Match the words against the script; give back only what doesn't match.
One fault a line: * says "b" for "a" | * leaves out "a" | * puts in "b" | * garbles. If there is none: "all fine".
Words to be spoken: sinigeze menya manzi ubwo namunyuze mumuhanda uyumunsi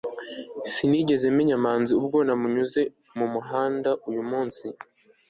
all fine